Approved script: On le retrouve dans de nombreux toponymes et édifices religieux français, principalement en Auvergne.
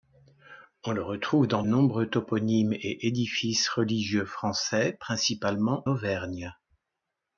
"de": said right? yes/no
no